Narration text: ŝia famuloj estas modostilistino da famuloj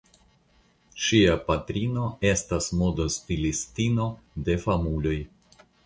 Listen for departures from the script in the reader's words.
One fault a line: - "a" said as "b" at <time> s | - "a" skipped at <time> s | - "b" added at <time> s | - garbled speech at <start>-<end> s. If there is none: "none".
- "famuloj" said as "patrino" at 1.5 s
- "da" said as "de" at 4.5 s